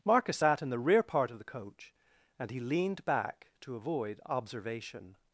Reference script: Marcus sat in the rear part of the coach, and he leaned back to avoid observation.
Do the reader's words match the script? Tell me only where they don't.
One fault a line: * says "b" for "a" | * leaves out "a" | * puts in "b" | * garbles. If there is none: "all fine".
all fine